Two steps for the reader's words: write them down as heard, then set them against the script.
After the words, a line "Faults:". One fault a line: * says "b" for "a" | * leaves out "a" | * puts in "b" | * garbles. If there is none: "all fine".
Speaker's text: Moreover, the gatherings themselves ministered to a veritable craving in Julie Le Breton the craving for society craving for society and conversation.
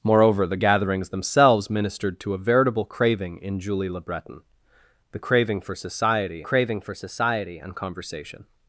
Moreover, the gatherings themselves ministered to a veritable craving in Julie Le Breton the craving for society craving for society and conversation.
Faults:
all fine